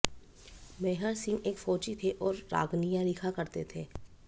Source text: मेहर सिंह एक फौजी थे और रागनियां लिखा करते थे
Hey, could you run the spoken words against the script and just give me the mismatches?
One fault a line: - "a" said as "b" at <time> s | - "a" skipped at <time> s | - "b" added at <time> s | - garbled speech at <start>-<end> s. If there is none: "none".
none